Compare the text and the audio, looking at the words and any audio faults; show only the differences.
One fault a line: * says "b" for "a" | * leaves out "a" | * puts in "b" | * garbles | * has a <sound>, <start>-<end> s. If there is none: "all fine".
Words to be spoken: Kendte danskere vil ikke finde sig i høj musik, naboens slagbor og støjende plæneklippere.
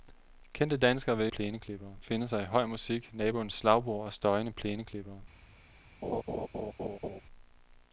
* says "plæneklippere" for "ikke"
* has a laugh, 6.0-7.2 s